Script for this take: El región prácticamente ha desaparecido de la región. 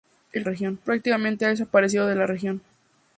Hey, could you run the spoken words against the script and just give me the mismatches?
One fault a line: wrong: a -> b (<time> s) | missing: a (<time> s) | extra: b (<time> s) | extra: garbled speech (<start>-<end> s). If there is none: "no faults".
no faults